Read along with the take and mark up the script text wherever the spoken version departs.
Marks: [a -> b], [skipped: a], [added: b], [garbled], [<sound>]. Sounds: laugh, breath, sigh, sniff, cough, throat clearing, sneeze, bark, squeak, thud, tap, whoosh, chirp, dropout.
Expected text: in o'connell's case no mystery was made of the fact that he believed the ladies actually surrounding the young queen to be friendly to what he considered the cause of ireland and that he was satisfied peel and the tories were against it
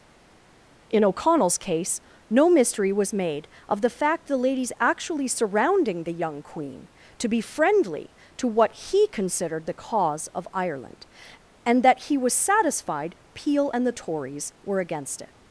in o'connell's case no mystery was made of the fact [skipped: that he believed] the ladies actually surrounding the young queen to be friendly to what he considered the cause of ireland and that he was satisfied peel and the tories were against it